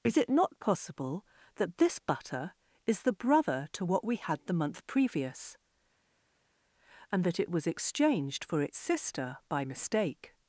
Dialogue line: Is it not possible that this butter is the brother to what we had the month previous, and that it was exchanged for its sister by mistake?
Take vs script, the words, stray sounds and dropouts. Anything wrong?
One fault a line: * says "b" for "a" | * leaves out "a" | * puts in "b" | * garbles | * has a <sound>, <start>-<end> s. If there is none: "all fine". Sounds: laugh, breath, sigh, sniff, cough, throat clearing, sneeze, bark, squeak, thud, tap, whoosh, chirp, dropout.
all fine